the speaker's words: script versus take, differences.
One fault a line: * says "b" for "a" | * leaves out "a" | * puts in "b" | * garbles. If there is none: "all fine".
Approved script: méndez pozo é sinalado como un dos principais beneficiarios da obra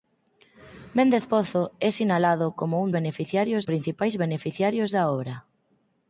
* says "beneficiarios" for "dos"